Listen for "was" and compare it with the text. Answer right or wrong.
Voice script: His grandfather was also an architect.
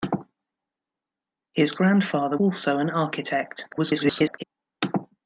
wrong